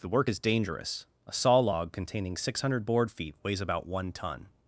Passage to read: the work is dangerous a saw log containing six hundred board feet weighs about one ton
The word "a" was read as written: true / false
true